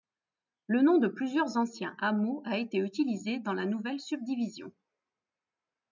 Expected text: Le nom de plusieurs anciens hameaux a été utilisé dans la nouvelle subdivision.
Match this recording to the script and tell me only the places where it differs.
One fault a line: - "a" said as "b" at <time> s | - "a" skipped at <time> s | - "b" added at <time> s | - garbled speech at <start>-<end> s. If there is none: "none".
none